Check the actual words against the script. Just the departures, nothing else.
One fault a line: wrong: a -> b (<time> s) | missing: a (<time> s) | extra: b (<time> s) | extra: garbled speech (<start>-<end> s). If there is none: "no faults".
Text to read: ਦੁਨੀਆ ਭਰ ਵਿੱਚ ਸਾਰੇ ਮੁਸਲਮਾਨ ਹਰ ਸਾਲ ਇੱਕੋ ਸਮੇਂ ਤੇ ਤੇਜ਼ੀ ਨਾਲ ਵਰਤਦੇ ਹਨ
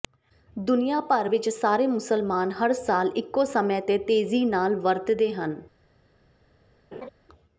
no faults